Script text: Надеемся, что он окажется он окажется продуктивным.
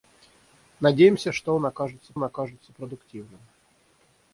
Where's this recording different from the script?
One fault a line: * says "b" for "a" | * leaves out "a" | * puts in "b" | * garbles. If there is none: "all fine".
all fine